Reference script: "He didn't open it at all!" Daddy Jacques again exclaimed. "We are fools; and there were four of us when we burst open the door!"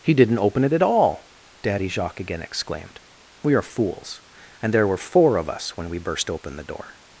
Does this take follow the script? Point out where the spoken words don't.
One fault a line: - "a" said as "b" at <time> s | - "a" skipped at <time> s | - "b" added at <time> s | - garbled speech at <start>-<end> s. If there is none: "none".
none